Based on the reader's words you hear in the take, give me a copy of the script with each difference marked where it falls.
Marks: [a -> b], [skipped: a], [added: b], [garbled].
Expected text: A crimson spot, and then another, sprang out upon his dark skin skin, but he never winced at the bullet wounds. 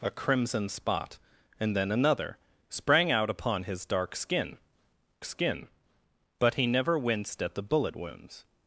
A crimson spot, and then another, sprang out upon his dark skin skin, but he never winced at the bullet wounds.